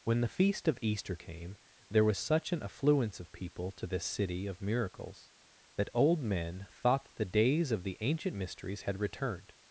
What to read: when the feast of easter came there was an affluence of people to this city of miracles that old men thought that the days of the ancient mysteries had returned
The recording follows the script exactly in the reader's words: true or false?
false